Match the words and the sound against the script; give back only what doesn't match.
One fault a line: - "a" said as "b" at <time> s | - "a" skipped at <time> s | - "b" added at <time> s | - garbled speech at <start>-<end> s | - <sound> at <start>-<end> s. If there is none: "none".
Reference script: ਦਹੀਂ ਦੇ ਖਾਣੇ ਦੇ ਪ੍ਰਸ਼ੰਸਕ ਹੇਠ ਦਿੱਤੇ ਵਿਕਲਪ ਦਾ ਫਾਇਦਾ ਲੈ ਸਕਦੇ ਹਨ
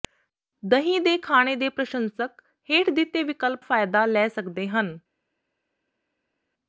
- "ਦਾ" skipped at 3.6 s